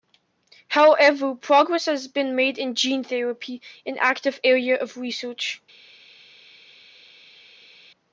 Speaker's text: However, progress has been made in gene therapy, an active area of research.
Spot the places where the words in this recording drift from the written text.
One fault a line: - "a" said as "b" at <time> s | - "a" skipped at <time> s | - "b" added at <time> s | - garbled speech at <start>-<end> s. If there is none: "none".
none